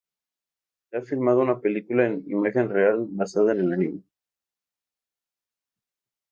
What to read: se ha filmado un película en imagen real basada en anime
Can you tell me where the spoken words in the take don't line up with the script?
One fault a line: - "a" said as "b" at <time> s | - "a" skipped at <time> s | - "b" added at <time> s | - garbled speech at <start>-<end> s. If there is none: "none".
- "un" said as "una" at 1.4 s
- "el" added at 3.6 s